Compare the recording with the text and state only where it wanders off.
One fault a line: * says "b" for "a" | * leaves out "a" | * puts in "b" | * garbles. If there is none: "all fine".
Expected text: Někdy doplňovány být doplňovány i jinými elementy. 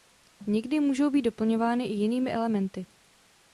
* says "můžou" for "doplňovány"